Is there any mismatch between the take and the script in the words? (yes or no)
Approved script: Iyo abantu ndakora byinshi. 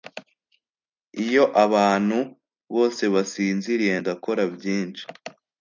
yes